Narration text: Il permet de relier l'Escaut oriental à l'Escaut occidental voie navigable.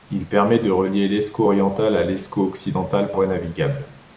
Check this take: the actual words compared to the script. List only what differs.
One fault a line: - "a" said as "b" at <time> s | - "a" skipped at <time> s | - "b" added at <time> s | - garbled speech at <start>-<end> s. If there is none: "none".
none